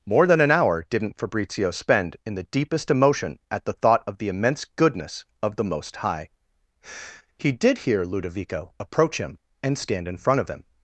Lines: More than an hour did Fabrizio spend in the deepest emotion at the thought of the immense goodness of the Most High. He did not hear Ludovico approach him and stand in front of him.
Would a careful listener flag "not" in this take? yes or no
yes